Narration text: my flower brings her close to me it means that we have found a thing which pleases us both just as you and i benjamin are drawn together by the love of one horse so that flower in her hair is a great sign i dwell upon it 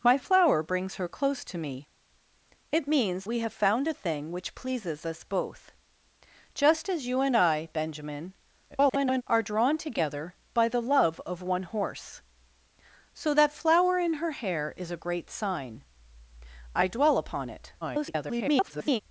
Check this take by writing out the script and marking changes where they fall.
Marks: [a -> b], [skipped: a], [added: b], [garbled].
my flower brings her close to me it means [skipped: that] we have found a thing which pleases us both just as you and i benjamin [garbled] are drawn together by the love of one horse so that flower in her hair is a great sign i dwell upon it [garbled]